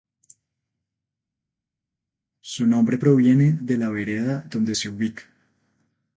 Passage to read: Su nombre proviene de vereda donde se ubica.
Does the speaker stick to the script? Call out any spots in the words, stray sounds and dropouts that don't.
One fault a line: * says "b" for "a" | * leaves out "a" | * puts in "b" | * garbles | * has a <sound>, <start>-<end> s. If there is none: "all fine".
* puts in "la"